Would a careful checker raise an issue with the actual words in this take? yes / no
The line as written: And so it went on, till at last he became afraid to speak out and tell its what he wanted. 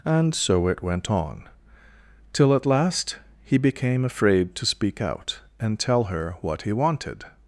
yes